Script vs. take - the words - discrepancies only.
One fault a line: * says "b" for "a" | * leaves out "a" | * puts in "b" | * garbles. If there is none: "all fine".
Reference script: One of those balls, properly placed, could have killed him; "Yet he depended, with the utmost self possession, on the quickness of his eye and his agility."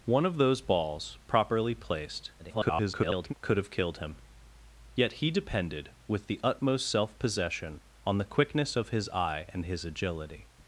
* garbles